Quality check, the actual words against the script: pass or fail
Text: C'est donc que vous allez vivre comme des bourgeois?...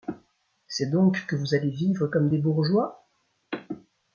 pass